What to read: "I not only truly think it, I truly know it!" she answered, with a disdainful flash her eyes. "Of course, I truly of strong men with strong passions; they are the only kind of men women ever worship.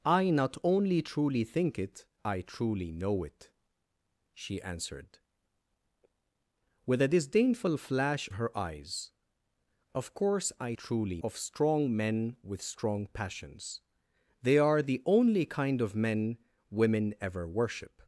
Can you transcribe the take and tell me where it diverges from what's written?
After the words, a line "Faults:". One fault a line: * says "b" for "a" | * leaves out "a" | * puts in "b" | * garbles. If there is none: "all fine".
"I not only truly think it, I truly know it!" she answered, with a disdainful flash her eyes. "Of course, I truly of strong men with strong passions; they are the only kind of men women ever worship.
Faults:
all fine